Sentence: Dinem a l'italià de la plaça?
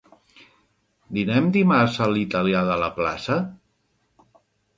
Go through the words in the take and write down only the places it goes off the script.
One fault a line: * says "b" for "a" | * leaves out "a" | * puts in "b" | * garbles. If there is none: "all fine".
* puts in "dimarts"